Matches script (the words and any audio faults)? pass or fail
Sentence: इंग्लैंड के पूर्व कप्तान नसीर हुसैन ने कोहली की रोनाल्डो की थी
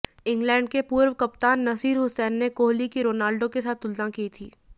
fail